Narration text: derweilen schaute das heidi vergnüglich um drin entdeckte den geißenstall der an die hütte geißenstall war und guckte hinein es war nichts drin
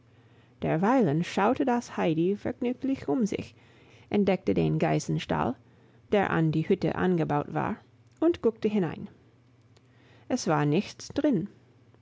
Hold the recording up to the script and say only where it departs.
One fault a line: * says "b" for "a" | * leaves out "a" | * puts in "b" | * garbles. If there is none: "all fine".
* says "sich" for "drin"
* says "angebaut" for "geißenstall"